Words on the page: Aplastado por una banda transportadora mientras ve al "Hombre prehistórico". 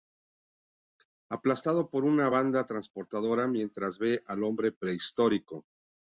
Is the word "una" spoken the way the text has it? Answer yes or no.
yes